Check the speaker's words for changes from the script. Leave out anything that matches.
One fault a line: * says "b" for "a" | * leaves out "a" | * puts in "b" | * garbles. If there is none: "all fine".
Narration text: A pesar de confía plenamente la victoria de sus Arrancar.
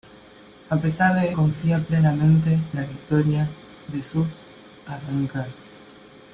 all fine